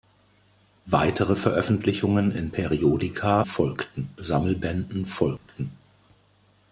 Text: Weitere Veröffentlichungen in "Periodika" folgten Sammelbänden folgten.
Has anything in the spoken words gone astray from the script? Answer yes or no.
no